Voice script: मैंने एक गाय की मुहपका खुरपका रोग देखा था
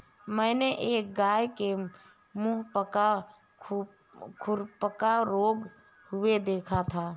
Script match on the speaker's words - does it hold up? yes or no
no